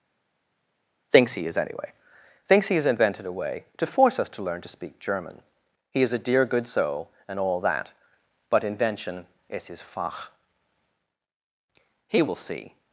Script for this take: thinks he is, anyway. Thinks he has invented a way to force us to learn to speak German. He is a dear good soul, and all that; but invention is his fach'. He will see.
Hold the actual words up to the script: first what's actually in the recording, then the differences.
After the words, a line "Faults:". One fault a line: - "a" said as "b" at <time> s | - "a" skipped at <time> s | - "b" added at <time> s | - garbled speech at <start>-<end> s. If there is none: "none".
thinks he is, anyway. Thinks he has invented a way to force us to learn to speak German. He is a dear good soul, and all that; but invention is his fach'. He will see.
Faults:
none